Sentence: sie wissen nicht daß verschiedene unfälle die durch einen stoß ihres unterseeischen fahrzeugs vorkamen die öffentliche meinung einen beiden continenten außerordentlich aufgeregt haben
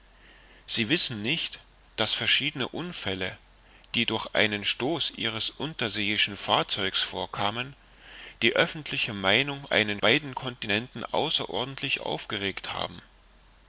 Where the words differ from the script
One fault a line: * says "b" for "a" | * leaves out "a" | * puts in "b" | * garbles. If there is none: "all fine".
all fine